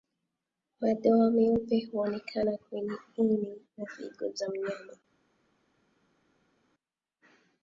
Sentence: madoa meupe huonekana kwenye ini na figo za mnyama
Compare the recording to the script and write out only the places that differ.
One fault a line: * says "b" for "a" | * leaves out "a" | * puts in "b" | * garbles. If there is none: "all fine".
all fine